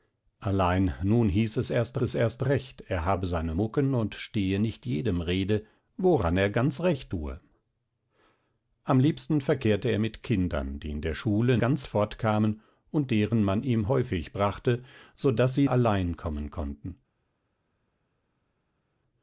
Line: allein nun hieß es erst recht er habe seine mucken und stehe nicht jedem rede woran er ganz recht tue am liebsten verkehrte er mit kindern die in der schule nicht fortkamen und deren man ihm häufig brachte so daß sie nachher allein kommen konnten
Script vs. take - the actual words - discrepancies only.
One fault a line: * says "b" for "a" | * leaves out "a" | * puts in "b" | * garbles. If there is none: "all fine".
* puts in "es erst"
* says "ganz" for "nicht"
* leaves out "nachher"